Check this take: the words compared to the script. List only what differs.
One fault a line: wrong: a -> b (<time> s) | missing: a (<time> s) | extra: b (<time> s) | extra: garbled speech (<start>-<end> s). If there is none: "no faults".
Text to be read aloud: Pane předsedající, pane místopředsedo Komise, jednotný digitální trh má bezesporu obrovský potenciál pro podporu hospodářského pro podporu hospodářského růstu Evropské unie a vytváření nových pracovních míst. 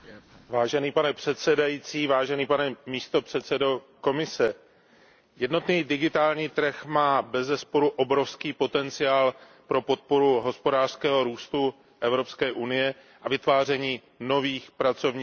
missing: pro podporu hospodářského (11.2 s)